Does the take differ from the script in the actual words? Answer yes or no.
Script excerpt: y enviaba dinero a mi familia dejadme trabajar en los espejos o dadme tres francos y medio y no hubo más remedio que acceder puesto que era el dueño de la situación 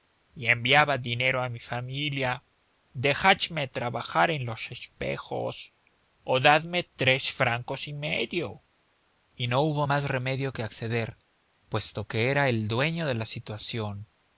no